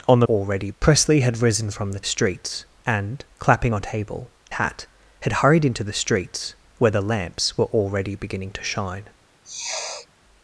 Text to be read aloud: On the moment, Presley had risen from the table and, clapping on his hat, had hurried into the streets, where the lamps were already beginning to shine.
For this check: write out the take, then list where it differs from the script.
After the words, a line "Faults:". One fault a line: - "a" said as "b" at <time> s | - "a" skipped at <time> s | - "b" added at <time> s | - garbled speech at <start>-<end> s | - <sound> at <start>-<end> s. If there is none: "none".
On the already, Presley had risen from the streets and, clapping on table hat, had hurried into the streets, where the lamps were already beginning to shine.
Faults:
- "moment" said as "already" at 0.2 s
- "table" said as "streets" at 2.0 s
- "his" said as "table" at 3.8 s
- sniff at 9.4-10.1 s